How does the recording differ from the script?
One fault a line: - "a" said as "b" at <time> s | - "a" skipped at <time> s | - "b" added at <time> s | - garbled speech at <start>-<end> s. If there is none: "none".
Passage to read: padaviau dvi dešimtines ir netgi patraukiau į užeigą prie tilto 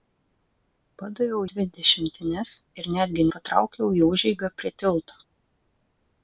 none